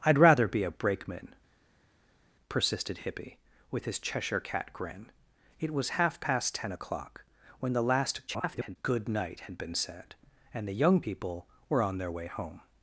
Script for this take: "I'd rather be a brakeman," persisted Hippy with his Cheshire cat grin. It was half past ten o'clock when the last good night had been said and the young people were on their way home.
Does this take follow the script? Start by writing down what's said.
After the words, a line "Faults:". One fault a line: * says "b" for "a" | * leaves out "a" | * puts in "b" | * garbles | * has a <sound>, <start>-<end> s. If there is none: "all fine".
"I'd rather be a brakeman," persisted Hippy with his Cheshire cat grin. It was half past ten o'clock when the last [garbled] good night had been said and the young people were on their way home.
Faults:
* garbles